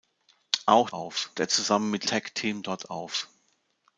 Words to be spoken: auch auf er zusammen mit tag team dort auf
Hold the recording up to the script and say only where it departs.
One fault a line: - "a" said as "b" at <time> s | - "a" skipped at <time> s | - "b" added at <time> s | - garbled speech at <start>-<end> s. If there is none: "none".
none